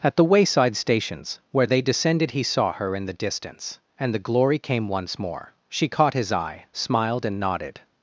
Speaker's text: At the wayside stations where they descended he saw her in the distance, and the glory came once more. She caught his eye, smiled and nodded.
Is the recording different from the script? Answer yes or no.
no